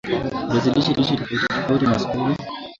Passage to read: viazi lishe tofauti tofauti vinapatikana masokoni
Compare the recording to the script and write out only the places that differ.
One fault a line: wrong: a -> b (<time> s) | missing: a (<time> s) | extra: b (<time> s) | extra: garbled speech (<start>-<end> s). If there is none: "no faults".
extra: lishe (0.9 s)
missing: vinapatikana (1.9 s)